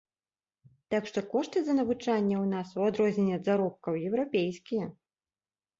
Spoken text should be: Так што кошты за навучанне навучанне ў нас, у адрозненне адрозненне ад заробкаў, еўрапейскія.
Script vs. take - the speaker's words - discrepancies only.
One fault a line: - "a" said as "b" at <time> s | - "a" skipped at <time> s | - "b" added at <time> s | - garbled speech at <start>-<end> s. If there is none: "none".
- "навучанне" skipped at 2.4 s
- "адрозненне" skipped at 3.3 s